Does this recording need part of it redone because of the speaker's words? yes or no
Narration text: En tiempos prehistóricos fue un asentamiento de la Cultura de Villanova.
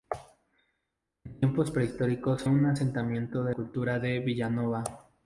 yes